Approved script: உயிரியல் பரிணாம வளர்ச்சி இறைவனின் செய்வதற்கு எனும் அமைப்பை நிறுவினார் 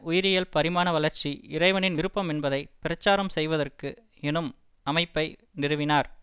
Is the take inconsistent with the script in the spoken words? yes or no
yes